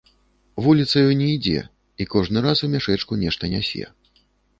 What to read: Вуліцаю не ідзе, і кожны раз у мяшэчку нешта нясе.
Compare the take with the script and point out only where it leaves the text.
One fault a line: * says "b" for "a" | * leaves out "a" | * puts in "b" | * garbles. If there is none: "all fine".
all fine